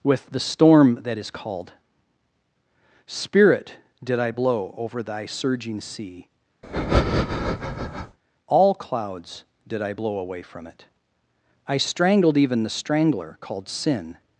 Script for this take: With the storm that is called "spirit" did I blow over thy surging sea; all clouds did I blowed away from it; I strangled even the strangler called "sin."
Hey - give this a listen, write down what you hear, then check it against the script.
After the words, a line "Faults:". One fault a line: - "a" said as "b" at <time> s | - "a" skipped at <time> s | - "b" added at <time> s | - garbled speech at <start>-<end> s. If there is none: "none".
With the storm that is called "spirit" did I blow over thy surging sea; all clouds did I blow away from it; I strangled even the strangler called "sin."
Faults:
- "blowed" said as "blow" at 9.9 s